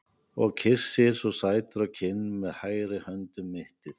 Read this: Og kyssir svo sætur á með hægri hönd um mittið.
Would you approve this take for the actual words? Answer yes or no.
no